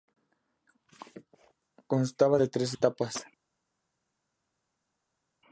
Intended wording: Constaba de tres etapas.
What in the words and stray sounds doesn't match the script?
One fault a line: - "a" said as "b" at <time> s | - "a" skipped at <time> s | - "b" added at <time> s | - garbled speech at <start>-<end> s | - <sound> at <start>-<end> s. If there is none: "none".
none